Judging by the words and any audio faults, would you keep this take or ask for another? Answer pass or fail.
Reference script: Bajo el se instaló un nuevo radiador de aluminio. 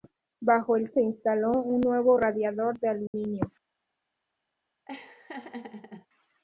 fail